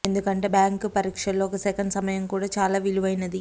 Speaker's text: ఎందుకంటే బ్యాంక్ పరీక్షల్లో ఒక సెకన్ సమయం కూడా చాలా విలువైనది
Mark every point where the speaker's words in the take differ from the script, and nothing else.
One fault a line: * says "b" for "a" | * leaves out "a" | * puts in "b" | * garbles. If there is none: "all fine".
all fine